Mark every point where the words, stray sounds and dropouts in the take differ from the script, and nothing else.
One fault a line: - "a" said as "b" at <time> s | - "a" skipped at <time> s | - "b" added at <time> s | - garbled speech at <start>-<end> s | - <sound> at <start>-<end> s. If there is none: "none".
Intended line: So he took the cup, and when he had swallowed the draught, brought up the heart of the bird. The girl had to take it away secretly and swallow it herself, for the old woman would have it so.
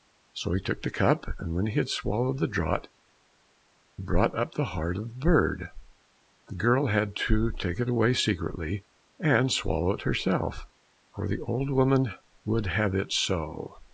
none